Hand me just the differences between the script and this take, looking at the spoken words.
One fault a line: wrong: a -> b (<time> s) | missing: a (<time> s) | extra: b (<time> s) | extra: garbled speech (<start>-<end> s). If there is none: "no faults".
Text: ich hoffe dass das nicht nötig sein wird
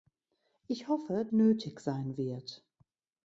missing: dass das nicht (1.2 s)